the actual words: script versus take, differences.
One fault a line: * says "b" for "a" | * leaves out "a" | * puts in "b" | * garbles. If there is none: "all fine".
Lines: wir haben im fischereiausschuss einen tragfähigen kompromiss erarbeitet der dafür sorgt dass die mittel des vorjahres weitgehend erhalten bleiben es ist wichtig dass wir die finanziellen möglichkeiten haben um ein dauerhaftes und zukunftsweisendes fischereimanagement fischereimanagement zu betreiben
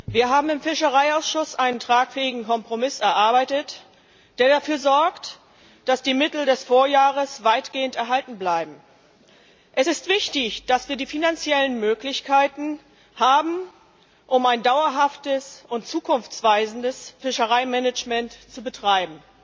* leaves out "fischereimanagement"